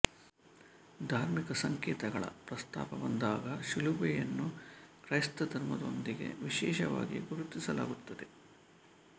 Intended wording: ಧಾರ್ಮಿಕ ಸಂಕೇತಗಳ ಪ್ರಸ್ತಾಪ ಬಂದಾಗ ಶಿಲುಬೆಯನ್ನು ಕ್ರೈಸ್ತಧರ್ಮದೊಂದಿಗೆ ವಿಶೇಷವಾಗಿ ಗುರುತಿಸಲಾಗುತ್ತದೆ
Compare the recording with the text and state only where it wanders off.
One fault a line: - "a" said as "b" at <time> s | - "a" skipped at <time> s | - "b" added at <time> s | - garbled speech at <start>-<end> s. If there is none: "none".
none